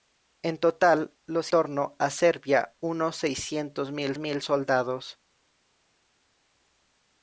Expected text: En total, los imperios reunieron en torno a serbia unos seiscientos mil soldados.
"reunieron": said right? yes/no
no